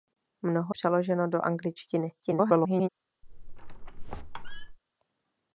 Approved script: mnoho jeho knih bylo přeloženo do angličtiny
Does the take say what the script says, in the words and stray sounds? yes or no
no